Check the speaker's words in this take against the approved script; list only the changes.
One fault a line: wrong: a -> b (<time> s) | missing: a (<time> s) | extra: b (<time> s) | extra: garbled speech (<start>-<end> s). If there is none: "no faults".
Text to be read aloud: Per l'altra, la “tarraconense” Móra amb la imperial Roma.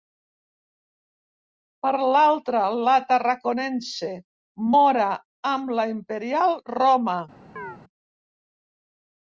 no faults